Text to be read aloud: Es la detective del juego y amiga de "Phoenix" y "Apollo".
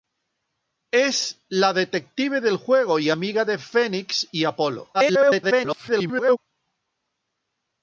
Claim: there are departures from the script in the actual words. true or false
true